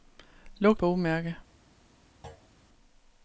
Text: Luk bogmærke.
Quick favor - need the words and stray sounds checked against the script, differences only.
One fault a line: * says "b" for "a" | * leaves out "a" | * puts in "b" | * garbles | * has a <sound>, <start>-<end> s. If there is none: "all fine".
* has a thud, 2.2-2.5 s